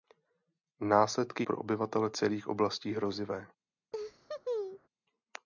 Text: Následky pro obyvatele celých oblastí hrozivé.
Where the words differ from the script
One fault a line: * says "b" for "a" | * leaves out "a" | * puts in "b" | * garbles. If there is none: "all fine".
all fine